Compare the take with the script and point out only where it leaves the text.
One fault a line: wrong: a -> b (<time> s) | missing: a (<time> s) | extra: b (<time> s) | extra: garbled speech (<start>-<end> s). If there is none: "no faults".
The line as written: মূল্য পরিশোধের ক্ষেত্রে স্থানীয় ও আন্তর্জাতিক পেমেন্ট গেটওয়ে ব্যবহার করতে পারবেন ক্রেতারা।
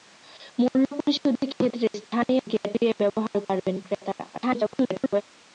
missing: ও আন্তর্জাতিক পেমেন্ট (2.4 s)
missing: করতে (3.4 s)
extra: garbled speech (4.3-5.2 s)